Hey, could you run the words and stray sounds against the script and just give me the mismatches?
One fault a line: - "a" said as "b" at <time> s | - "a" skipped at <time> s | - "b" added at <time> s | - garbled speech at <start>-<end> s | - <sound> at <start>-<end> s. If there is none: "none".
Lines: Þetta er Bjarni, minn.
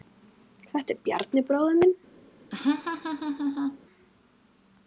- "bróðir" added at 1.5 s
- laugh at 2.5-3.8 s